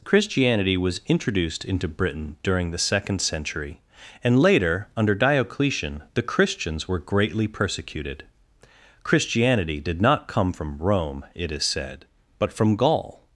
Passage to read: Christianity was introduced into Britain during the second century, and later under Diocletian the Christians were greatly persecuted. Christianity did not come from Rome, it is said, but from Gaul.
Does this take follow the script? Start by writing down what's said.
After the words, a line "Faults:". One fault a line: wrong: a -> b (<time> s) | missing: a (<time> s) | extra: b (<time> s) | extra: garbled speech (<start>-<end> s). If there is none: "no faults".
Christianity was introduced into Britain during the second century, and later under Diocletian the Christians were greatly persecuted. Christianity did not come from Rome, it is said, but from Gaul.
Faults:
no faults